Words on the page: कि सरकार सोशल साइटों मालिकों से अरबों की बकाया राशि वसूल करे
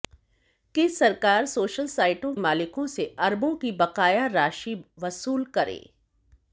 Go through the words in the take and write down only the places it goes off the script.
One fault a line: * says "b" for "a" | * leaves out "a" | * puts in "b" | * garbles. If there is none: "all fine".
all fine